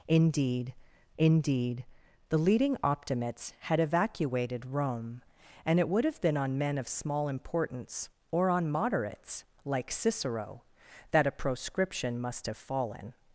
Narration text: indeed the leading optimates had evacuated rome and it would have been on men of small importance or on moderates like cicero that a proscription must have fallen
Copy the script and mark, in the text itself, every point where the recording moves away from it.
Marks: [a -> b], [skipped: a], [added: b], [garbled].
indeed [added: indeed] the leading optimates had evacuated rome and it would have been on men of small importance or on moderates like cicero that a proscription must have fallen